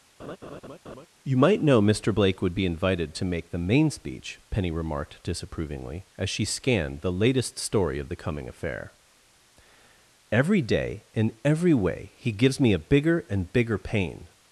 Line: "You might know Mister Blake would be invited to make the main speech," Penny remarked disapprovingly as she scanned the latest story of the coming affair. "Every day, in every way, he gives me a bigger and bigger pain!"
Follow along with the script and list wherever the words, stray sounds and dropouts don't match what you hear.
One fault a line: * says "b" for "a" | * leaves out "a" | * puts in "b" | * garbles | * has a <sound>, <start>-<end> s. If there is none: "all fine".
* has a laugh, 0.2-1.1 s